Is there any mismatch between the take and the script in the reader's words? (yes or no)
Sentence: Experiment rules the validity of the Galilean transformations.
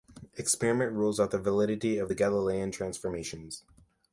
yes